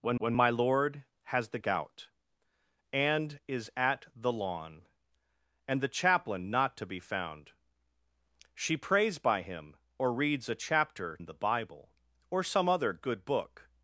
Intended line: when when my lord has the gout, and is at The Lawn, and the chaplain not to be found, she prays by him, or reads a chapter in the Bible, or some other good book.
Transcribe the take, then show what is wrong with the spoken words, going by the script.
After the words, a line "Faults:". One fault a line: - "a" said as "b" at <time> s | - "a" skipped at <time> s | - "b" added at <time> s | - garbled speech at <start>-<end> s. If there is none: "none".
when when my lord has the gout, and is at The Lawn, and the chaplain not to be found, she prays by him, or reads a chapter in the Bible, or some other good book.
Faults:
none